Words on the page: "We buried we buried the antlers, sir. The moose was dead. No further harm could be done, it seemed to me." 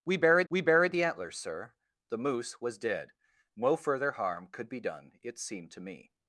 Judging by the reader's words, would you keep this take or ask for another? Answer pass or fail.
pass